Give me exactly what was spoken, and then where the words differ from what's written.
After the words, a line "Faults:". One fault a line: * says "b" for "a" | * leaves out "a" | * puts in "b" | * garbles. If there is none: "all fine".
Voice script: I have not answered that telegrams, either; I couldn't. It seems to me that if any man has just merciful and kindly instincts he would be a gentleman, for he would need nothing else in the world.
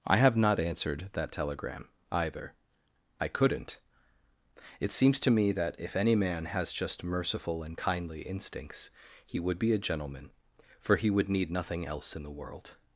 I have not answered that telegram, either; I couldn't. It seems to me that if any man has just merciful and kindly instincts he would be a gentleman, for he would need nothing else in the world.
Faults:
* says "telegram" for "telegrams"